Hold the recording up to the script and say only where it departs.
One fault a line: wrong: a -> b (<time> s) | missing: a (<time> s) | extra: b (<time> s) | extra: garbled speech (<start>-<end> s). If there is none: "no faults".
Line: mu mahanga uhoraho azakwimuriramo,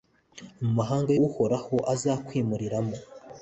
no faults